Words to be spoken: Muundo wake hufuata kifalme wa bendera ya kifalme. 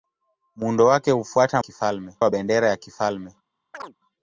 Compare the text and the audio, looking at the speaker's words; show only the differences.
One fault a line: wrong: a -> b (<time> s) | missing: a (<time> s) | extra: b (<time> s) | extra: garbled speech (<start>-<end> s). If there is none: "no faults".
no faults